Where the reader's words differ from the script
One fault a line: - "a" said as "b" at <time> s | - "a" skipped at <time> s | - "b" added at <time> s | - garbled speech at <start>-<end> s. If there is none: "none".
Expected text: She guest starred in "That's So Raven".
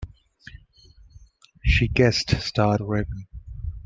- "in That's" skipped at 2.8 s